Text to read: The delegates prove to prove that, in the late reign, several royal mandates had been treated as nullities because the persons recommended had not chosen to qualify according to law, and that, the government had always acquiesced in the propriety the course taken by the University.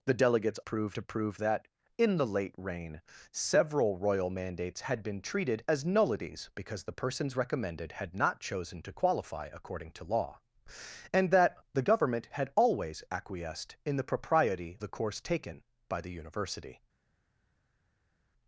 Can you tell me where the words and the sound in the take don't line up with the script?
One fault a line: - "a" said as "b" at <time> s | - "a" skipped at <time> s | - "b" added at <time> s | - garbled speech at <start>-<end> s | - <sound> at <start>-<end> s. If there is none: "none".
none